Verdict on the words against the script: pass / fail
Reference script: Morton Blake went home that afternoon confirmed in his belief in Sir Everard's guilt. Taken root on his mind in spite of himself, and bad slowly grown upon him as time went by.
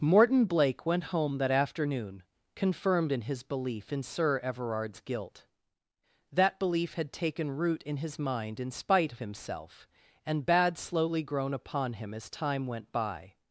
fail